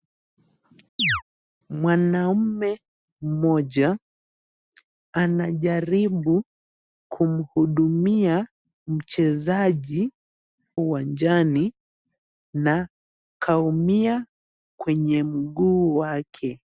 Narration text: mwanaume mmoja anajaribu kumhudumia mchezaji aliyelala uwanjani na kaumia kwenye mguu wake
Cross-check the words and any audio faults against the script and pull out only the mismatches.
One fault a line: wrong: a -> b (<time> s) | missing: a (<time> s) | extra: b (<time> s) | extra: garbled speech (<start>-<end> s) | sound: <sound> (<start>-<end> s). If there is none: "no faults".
sound: chirp (1.0-1.2 s)
missing: aliyelala (10.1 s)